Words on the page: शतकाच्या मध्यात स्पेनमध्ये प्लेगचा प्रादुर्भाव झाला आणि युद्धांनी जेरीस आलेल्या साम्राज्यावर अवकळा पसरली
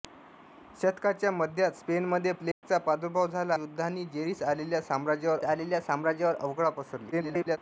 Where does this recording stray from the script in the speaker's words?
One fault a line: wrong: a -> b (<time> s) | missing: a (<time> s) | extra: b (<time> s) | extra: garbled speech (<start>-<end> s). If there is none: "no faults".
missing: आणि (3.5 s)
extra: आलेल्या साम्राज्यावर (5.4 s)
extra: garbled speech (7.1-7.6 s)